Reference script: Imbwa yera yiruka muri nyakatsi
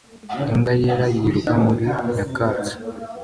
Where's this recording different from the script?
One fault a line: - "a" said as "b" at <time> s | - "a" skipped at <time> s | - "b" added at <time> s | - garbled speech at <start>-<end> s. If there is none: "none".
none